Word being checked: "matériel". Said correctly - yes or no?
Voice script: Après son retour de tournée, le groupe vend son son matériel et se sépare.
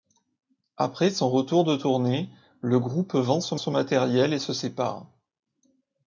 yes